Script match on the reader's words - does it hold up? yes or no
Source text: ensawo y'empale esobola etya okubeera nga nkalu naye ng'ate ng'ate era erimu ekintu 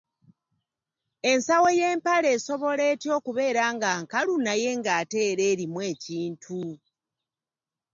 no